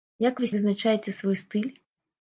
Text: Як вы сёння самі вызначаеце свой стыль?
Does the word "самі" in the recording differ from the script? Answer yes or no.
yes